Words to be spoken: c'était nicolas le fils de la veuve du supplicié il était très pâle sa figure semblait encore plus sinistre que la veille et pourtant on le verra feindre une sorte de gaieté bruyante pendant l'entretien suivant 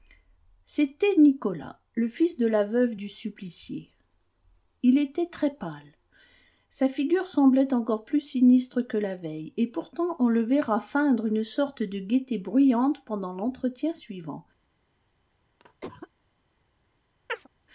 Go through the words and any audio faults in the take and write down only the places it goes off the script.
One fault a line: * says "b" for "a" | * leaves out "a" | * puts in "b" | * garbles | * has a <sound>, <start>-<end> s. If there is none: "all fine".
* has a cough, 15.6-16.1 s
* has a chirp, 17.3-17.5 s